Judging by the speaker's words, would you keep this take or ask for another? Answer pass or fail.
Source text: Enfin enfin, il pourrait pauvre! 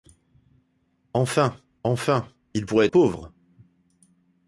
pass